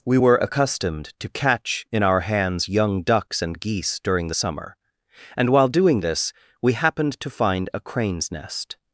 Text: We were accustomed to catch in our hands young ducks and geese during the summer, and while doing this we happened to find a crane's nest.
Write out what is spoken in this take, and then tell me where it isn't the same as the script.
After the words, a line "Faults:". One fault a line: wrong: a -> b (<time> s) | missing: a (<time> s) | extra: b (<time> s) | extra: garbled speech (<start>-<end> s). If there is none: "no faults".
We were accustomed to catch in our hands young ducks and geese during the summer, and while doing this we happened to find a crane's nest.
Faults:
no faults